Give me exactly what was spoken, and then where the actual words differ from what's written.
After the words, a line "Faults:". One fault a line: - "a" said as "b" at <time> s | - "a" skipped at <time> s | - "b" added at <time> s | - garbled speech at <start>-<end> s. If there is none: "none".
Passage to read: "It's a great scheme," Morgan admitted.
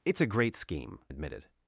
"It's a great scheme," Admitted.
Faults:
- "Morgan" skipped at 1.0 s